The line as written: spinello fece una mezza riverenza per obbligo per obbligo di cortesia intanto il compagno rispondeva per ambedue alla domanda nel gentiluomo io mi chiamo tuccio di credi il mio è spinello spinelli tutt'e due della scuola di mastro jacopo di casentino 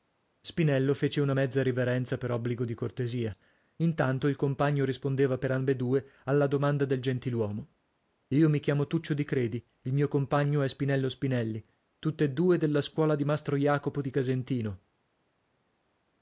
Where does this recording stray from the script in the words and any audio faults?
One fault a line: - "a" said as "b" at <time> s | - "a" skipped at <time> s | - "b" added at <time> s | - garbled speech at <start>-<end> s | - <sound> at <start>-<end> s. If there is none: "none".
- "per obbligo" skipped at 2.6 s
- "nel" said as "del" at 6.8 s
- "compagno" added at 10.1 s